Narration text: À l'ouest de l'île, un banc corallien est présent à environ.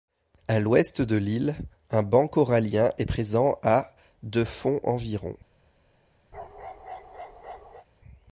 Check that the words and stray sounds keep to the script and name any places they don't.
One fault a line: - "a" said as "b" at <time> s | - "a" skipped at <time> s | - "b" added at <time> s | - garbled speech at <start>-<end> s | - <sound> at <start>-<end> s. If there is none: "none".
- "de fond" added at 4.2 s
- bark at 6.3-7.9 s